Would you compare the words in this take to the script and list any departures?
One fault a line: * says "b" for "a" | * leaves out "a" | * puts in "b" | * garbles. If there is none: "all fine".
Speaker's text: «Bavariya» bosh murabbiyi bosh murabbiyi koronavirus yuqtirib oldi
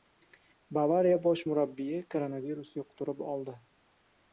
* leaves out "bosh murabbiyi"